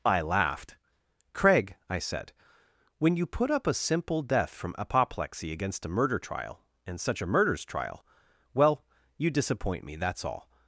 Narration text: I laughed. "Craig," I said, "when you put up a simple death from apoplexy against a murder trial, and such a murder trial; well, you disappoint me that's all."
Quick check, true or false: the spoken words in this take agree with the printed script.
false